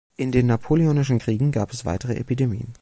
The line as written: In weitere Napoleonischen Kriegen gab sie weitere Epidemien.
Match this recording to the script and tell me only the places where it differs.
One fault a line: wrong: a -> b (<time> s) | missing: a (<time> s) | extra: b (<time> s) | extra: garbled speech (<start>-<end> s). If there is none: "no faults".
wrong: weitere -> den (0.3 s)
wrong: sie -> es (1.7 s)